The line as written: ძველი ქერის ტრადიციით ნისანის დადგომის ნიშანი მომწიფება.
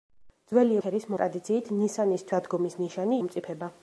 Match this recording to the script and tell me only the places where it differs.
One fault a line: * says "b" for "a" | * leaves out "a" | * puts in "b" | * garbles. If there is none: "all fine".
all fine